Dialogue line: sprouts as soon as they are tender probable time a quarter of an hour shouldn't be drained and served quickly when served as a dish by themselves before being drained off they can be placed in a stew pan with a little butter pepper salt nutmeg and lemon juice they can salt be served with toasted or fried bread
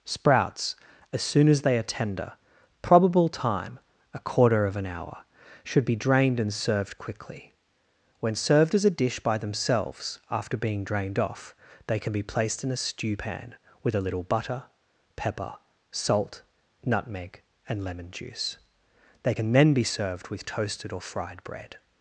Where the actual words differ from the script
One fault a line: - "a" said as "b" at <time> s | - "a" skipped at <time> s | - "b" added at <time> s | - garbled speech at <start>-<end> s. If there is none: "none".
- "shouldn't" said as "should" at 5.6 s
- "before" said as "after" at 10.3 s
- "salt" said as "then" at 19.5 s